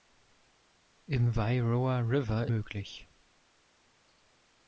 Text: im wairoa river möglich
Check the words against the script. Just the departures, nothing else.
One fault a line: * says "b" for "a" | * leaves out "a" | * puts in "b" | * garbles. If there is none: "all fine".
all fine